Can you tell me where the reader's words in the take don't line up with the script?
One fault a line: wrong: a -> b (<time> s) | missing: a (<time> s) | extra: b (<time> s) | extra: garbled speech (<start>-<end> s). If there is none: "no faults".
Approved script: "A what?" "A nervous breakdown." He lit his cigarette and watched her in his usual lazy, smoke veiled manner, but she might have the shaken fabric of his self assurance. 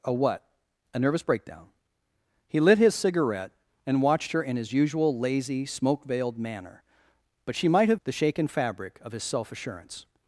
no faults